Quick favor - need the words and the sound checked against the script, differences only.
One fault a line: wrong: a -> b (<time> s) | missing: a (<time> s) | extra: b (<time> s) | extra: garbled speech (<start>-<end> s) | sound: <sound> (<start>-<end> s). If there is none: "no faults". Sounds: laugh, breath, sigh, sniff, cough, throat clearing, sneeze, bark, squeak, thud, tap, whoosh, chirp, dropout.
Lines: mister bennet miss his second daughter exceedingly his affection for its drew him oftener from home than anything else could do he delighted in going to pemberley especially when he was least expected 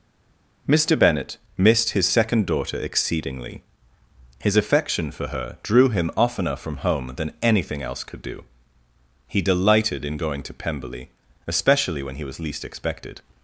wrong: miss -> missed (1.6 s)
wrong: its -> her (5.3 s)